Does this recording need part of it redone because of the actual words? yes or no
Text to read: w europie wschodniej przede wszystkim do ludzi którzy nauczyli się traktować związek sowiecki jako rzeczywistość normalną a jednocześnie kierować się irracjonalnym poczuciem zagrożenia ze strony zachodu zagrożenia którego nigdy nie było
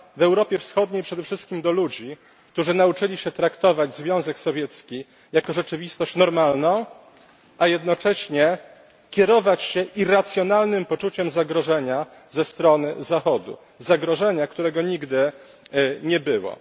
no